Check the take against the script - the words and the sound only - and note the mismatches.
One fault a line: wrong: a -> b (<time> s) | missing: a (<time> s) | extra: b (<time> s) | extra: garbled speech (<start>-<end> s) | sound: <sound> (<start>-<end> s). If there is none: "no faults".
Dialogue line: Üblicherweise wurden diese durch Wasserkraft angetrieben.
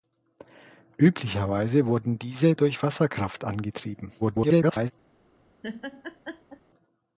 extra: garbled speech (4.2-4.9 s)
sound: laugh (5.6-6.6 s)